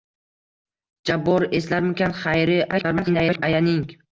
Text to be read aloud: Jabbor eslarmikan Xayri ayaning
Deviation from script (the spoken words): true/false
true